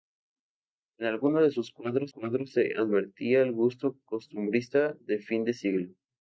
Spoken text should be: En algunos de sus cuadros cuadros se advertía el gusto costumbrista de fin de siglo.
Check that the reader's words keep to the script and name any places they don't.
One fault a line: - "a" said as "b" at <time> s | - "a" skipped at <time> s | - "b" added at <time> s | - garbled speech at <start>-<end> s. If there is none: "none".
none